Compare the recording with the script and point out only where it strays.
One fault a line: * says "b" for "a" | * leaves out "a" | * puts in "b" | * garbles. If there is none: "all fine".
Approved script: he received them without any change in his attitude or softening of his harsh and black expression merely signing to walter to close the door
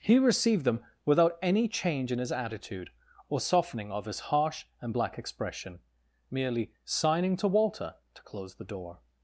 all fine